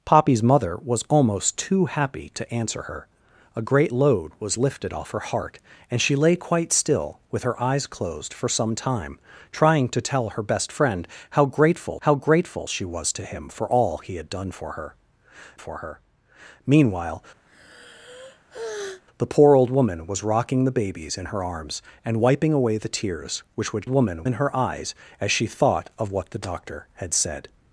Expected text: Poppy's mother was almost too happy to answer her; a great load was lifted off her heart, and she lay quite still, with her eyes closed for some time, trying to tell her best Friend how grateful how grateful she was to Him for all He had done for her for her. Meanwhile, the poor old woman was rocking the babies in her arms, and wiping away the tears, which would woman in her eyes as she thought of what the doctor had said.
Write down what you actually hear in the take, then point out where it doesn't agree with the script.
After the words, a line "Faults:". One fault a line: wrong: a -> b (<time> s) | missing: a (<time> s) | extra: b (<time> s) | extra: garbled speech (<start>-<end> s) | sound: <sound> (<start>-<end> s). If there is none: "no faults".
Poppy's mother was almost too happy to answer her; a great load was lifted off her heart, and she lay quite still, with her eyes closed for some time, trying to tell her best Friend how grateful how grateful she was to Him for all He had done for her for her. Meanwhile, the poor old woman was rocking the babies in her arms, and wiping away the tears, which would woman in her eyes as she thought of what the doctor had said.
Faults:
sound: sigh (17.5-19.0 s)